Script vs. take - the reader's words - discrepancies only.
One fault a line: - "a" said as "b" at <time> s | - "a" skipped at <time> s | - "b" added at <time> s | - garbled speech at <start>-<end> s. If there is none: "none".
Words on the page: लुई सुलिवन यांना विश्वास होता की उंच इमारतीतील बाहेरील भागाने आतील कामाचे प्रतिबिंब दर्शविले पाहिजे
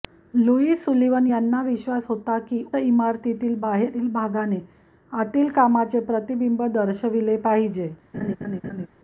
- "उंच" skipped at 2.6 s